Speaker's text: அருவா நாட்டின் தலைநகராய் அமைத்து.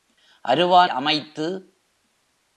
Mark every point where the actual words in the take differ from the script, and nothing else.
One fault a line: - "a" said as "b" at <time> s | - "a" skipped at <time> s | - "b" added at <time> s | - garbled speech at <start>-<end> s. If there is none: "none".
- "நாட்டின் தலைநகராய்" skipped at 0.9 s